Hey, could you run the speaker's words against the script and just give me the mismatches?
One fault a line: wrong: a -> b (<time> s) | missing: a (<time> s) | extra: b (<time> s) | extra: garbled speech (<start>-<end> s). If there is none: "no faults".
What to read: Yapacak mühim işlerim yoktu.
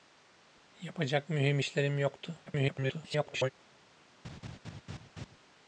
extra: garbled speech (2.5-3.5 s)